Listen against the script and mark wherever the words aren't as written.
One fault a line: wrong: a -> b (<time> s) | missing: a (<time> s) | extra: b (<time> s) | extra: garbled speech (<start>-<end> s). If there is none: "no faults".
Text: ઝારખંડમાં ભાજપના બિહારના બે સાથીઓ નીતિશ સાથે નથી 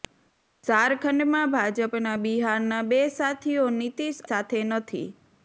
no faults